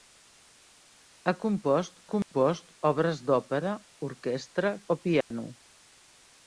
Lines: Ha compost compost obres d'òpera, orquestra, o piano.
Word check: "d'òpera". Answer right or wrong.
right